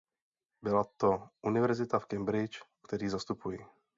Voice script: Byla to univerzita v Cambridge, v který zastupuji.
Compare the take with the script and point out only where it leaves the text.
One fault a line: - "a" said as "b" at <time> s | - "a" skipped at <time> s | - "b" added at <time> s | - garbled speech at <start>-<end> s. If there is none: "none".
none